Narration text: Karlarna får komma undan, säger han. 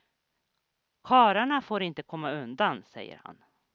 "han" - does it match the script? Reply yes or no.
yes